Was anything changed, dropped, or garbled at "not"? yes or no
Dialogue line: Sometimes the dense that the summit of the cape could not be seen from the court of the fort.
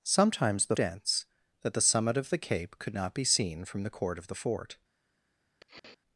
no